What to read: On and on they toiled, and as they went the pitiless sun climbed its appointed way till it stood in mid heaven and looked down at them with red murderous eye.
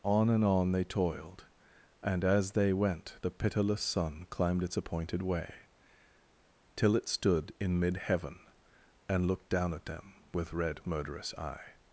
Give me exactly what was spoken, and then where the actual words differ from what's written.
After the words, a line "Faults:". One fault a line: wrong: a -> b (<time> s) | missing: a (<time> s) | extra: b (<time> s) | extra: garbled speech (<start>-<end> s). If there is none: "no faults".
On and on they toiled, and as they went the pitiless sun climbed its appointed way till it stood in mid heaven and looked down at them with red murderous eye.
Faults:
no faults